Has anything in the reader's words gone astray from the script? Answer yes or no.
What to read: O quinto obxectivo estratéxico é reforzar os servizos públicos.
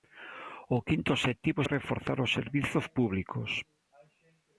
yes